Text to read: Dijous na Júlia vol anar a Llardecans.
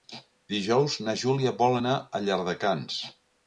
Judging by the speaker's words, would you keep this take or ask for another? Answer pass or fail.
pass